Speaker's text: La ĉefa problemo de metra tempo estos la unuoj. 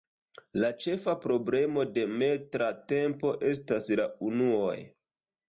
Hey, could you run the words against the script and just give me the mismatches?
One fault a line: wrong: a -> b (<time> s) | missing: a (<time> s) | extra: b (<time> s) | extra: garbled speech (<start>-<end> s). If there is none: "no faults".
wrong: estos -> estas (3.5 s)